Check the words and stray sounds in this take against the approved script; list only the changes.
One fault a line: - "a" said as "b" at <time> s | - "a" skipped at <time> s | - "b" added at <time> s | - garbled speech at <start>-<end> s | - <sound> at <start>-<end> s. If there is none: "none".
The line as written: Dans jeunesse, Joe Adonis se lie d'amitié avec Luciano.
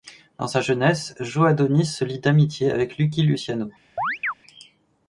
- "sa" added at 0.5 s
- "Lucky" added at 3.0 s
- chirp at 4.0-4.3 s